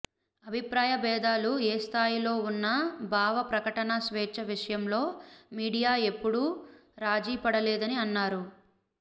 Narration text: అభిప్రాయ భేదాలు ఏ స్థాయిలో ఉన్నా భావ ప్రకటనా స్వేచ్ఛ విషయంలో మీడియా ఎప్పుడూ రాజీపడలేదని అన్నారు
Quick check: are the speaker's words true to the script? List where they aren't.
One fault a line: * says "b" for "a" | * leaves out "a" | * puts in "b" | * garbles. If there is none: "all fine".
all fine